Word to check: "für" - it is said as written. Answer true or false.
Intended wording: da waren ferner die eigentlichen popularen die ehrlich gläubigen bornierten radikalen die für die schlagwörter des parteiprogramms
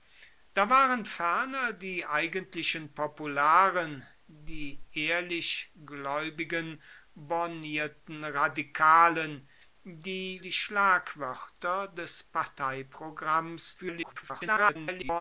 false